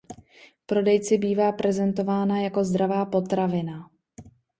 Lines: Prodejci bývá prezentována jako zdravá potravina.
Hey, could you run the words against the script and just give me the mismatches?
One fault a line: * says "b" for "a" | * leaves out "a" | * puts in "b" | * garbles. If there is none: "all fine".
all fine